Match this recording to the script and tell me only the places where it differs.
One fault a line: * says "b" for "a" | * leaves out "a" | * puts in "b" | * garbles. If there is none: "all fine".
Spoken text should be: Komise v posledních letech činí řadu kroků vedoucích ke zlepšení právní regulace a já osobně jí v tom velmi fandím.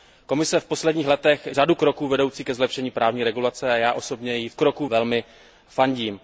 * leaves out "činí"
* says "kroků" for "tom"